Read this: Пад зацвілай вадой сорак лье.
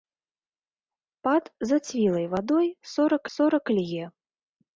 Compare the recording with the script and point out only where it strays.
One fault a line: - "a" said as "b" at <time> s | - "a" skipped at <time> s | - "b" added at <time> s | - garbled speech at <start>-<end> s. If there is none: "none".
- "сорак" added at 3.4 s